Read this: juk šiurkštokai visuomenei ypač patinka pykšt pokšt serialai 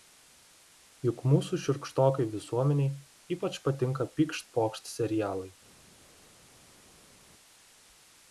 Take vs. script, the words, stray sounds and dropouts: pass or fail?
fail